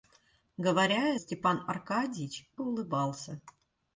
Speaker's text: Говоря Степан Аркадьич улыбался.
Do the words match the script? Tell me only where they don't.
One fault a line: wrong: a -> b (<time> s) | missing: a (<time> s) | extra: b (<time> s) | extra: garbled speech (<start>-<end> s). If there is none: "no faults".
no faults